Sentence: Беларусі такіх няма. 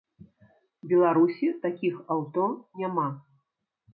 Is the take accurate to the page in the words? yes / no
no